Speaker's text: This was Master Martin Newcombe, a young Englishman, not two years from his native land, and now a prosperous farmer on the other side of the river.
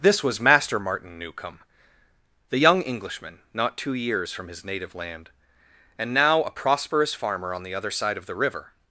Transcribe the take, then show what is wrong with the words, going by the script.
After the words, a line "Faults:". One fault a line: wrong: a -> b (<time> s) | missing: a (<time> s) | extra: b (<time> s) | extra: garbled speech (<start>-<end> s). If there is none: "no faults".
This was Master Martin Newcombe, the young Englishman, not two years from his native land, and now a prosperous farmer on the other side of the river.
Faults:
wrong: a -> the (2.5 s)